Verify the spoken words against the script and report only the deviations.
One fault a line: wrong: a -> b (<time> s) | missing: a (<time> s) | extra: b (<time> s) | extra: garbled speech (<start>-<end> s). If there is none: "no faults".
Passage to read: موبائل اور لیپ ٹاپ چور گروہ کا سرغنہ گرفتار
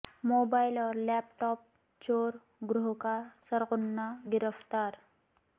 no faults